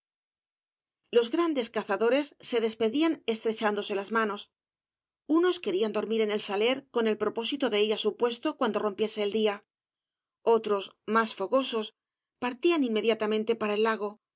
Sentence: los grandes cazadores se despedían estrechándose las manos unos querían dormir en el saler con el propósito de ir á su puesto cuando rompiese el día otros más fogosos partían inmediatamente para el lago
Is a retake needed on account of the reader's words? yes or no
no